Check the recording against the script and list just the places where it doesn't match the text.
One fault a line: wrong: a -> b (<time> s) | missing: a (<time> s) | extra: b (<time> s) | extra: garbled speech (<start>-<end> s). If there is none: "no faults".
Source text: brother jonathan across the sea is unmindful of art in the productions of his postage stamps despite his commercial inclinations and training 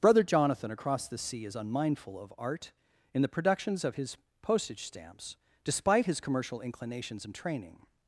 no faults